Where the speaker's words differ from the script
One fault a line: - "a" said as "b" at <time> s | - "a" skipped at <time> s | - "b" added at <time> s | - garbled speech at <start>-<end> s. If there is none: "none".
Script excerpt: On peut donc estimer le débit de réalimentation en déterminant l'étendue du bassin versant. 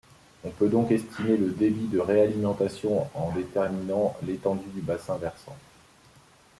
none